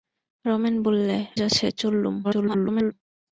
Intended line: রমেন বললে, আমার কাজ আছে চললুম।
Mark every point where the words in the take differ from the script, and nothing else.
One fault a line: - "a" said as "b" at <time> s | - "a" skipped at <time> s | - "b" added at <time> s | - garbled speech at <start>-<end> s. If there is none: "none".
- "আমার কাজ" skipped at 1.2 s
- garbled speech at 2.2-2.9 s